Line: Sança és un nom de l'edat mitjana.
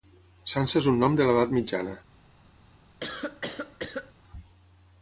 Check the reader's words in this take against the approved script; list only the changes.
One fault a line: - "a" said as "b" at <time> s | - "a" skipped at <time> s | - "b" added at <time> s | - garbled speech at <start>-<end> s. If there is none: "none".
none